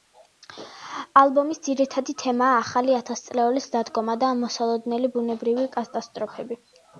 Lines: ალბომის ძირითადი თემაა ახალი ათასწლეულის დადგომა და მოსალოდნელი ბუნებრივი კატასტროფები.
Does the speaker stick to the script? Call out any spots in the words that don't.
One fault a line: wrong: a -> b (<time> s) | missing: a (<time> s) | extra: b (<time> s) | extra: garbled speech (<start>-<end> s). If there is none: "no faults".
no faults